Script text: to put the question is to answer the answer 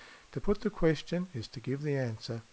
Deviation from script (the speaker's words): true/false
true